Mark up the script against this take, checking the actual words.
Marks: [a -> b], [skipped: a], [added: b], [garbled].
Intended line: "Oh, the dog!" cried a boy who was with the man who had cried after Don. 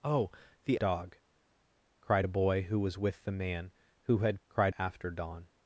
"Oh, the dog!" cried a boy who was with the man who had cried after Don.